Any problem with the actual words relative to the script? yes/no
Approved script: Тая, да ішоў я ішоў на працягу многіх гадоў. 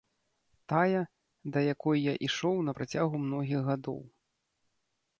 yes